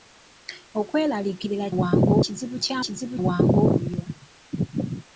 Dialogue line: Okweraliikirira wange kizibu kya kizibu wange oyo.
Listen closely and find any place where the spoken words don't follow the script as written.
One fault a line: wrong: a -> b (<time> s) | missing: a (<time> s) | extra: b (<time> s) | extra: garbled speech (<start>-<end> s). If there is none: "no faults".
no faults